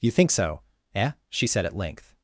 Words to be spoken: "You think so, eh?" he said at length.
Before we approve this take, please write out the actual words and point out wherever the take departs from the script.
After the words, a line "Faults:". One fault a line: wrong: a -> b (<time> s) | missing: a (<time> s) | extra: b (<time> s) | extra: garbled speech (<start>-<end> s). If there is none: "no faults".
"You think so, eh?" she said at length.
Faults:
wrong: he -> she (1.3 s)